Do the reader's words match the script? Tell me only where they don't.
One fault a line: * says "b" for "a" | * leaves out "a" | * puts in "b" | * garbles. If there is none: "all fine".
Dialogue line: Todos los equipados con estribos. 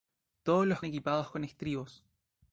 all fine